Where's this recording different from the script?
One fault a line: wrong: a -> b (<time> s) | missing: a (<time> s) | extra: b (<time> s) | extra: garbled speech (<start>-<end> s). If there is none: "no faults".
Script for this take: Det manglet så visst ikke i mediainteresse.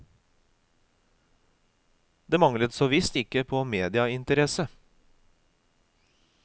wrong: i -> på (3.5 s)